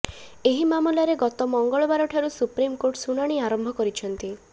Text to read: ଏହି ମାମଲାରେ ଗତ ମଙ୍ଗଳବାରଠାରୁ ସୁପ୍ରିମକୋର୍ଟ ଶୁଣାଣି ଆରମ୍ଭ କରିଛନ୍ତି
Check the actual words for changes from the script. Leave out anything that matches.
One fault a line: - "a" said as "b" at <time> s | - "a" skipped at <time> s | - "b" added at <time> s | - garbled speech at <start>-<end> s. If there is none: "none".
none